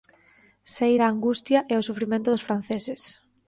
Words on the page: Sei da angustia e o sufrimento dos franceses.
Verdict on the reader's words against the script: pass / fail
pass